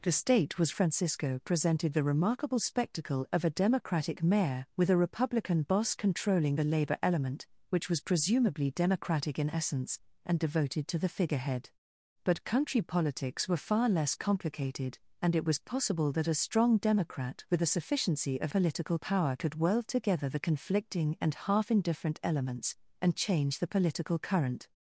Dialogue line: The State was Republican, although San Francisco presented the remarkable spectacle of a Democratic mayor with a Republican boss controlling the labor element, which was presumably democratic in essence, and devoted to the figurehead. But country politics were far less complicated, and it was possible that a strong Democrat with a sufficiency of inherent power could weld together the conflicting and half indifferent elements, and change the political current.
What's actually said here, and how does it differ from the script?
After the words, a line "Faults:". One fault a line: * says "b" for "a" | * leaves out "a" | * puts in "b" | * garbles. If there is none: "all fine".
The State was Francisco presented the remarkable spectacle of a Democratic mayor with a Republican boss controlling the labor element, which was presumably democratic in essence, and devoted to the figurehead. But country politics were far less complicated, and it was possible that a strong Democrat with a sufficiency of political power could weld together the conflicting and half indifferent elements, and change the political current.
Faults:
* leaves out "Republican although San"
* says "political" for "inherent"